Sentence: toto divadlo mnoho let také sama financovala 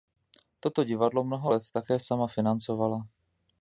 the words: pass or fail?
pass